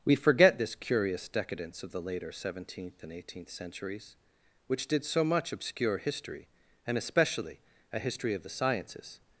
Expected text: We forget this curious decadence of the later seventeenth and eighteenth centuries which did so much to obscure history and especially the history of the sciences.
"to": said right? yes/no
no